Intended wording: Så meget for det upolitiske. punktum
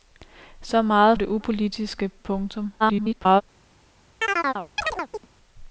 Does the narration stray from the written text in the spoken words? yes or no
yes